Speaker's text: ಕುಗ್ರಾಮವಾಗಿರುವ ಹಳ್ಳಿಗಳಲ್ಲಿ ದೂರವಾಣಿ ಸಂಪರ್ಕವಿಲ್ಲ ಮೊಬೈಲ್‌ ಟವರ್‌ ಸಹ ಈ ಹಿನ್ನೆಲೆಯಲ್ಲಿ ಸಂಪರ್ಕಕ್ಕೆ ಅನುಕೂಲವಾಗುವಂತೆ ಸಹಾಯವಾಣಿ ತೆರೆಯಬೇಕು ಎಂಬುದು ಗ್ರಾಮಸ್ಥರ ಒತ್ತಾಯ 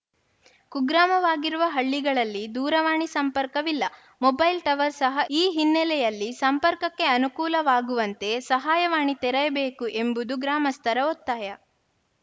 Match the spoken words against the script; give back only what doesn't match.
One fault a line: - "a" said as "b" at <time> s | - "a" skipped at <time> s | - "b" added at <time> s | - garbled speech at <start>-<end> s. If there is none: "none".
none